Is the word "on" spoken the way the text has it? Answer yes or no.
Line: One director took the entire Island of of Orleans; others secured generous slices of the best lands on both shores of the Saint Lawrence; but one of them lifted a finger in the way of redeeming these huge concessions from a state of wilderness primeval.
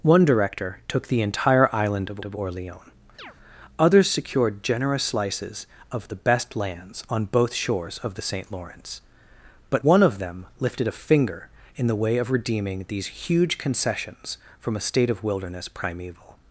yes